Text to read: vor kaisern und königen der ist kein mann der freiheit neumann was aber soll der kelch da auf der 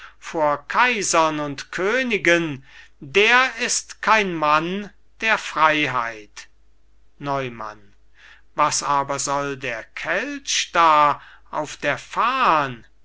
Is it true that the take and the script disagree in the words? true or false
false